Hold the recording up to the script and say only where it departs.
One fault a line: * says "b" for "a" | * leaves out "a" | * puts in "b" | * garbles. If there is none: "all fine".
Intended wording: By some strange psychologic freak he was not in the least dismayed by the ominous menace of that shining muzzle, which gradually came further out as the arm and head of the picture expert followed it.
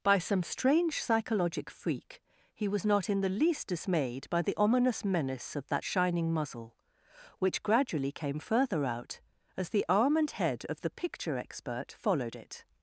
all fine